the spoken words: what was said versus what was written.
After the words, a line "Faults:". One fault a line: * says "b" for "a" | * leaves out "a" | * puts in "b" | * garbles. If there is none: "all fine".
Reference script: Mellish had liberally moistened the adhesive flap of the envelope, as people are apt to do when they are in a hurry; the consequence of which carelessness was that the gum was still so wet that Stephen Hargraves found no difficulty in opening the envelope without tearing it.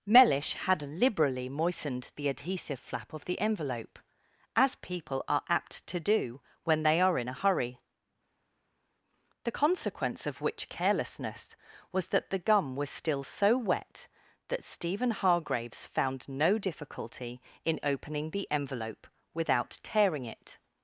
Mellish had liberally moistened the adhesive flap of the envelope, as people are apt to do when they are in a hurry; the consequence of which carelessness was that the gum was still so wet that Stephen Hargraves found no difficulty in opening the envelope without tearing it.
Faults:
all fine